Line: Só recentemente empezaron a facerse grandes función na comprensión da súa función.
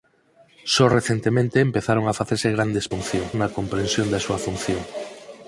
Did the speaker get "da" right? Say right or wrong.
right